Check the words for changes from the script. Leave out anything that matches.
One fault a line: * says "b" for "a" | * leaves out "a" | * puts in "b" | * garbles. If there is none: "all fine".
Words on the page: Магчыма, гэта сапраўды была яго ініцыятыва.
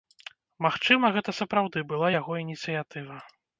all fine